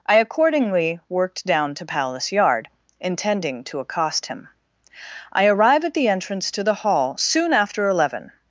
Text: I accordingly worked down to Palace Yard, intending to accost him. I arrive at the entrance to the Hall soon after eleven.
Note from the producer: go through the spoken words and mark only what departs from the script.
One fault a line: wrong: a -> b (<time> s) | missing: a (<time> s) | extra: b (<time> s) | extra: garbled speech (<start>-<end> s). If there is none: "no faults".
no faults